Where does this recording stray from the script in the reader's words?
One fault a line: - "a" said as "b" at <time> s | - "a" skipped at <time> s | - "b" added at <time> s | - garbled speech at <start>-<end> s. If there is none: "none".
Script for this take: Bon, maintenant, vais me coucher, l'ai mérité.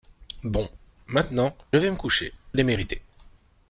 none